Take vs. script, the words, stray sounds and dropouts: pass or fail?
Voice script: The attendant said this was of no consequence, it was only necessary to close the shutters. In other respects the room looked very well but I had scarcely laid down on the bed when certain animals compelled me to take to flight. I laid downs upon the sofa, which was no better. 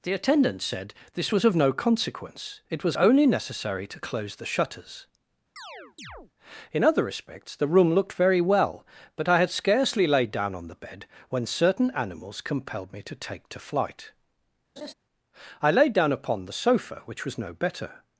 fail